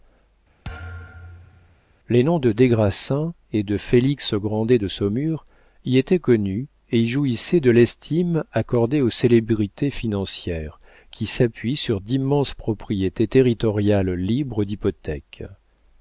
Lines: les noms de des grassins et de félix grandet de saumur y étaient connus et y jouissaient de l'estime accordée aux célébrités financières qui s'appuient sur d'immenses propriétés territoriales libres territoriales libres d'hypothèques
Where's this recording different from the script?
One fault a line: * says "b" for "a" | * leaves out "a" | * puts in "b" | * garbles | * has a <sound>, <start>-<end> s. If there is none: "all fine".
* has a thud, 0.6-1.8 s
* leaves out "territoriales libres"